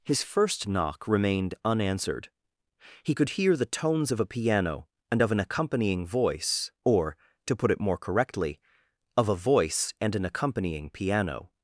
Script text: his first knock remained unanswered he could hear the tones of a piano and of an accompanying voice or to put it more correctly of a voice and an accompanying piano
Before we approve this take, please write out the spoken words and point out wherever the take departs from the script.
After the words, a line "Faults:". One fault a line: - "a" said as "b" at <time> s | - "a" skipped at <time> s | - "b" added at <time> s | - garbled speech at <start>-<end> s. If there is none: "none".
his first knock remained unanswered he could hear the tones of a piano and of an accompanying voice or to put it more correctly of a voice and an accompanying piano
Faults:
none